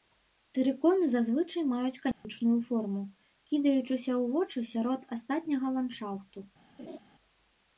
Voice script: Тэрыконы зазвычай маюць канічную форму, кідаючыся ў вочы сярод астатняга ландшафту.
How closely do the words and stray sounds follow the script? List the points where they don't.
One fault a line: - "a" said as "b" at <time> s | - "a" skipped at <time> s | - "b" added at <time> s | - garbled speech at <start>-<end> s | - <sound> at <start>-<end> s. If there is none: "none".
- dropout at 2.1-2.2 s
- laugh at 6.8-7.0 s